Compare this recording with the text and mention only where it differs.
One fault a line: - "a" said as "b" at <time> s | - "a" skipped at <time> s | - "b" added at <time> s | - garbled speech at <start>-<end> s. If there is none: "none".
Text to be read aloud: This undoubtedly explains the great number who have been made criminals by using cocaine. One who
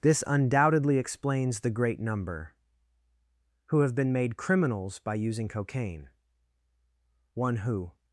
none